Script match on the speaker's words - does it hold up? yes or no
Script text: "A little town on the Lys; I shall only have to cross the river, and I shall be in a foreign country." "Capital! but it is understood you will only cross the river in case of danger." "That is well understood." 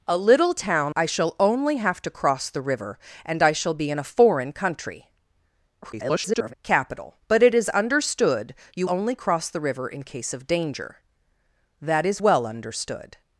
no